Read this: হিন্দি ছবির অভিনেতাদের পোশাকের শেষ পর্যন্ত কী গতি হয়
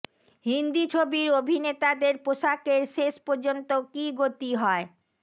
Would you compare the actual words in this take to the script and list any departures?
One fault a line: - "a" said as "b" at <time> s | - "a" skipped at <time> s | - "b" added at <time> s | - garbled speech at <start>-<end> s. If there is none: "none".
none